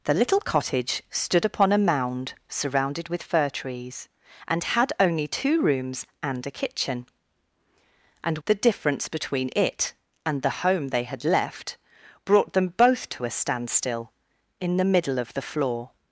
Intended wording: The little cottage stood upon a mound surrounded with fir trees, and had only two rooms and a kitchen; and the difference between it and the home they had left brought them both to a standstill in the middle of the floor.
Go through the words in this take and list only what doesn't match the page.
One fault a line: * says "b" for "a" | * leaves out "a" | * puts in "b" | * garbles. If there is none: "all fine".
all fine